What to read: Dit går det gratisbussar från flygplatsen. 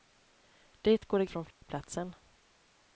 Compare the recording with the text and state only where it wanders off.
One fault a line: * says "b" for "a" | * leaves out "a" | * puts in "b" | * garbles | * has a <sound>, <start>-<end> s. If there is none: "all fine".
* leaves out "gratisbussar"
* has a dropout, 1.5-1.6 s